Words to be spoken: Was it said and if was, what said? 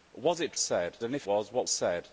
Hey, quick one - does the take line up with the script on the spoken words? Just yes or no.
yes